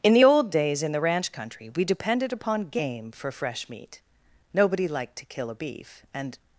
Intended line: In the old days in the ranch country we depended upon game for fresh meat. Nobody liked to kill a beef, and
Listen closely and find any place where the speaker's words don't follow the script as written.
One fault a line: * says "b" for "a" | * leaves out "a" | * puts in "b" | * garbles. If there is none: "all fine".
all fine